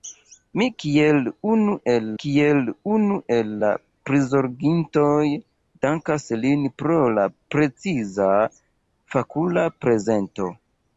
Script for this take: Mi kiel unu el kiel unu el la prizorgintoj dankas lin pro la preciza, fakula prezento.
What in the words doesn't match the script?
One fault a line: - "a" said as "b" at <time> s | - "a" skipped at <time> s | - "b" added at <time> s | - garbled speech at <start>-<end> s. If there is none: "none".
none